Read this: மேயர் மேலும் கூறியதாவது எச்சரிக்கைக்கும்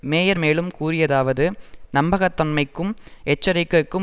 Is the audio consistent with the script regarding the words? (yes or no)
no